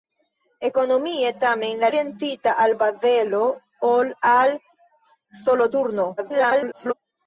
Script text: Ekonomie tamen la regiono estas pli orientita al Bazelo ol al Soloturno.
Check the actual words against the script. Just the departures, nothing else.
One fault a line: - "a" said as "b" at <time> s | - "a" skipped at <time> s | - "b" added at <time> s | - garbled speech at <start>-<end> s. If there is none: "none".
- "regiono estas pli" skipped at 1.9 s
- garbled speech at 6.2-6.9 s